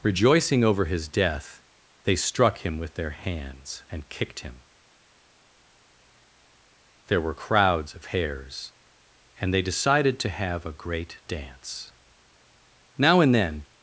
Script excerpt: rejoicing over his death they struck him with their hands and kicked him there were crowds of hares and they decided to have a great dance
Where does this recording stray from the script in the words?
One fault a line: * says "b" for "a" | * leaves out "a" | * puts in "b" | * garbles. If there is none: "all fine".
* puts in "now and then"